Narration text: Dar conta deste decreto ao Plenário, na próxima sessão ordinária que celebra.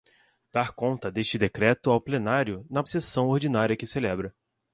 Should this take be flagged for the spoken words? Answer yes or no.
yes